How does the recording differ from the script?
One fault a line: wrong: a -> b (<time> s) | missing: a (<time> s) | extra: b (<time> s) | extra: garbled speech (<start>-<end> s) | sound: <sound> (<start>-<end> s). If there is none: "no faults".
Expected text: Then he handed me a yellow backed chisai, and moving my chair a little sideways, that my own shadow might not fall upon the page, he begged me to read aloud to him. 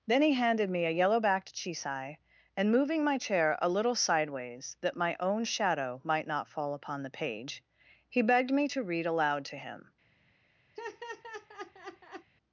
sound: laugh (10.8-12.3 s)